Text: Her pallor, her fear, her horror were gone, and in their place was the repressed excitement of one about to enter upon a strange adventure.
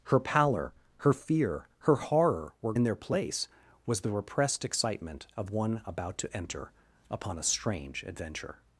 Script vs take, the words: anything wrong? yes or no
yes